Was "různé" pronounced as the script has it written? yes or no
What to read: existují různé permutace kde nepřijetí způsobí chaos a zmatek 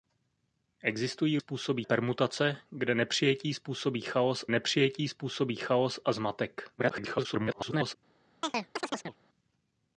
no